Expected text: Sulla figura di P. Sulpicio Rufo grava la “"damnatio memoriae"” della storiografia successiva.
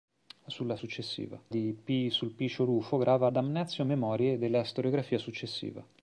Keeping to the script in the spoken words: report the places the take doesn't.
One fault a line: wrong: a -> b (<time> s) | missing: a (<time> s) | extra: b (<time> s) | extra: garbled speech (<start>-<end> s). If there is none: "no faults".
wrong: figura -> successiva (0.8 s)
missing: la (3.3 s)